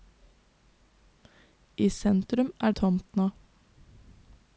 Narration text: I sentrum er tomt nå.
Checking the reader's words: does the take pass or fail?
pass